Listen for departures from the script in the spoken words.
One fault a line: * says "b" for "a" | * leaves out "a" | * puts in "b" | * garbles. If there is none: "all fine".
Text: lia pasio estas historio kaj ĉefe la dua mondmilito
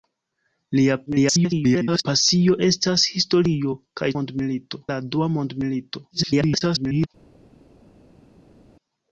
* garbles
* says "mondmilito" for "ĉefe"
* garbles